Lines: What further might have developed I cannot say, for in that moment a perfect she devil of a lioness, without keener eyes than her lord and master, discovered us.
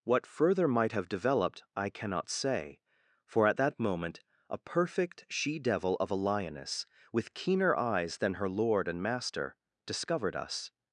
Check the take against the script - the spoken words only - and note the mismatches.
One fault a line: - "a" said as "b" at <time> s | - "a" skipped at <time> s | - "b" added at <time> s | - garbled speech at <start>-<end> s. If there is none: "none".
- "in" said as "at" at 3.5 s
- "without" said as "with" at 7.1 s